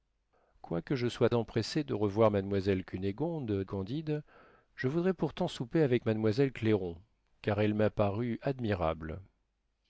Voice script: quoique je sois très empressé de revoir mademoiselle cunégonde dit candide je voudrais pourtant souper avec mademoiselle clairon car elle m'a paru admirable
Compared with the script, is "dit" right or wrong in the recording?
wrong